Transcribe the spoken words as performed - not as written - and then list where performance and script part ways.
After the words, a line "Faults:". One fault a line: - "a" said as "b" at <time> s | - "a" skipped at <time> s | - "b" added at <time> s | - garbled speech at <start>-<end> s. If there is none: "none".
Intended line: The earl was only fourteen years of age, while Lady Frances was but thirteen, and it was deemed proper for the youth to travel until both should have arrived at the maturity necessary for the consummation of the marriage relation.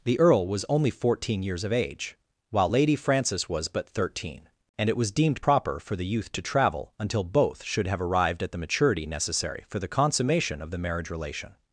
The earl was only fourteen years of age, while Lady Frances was but thirteen, and it was deemed proper for the youth to travel until both should have arrived at the maturity necessary for the consummation of the marriage relation.
Faults:
none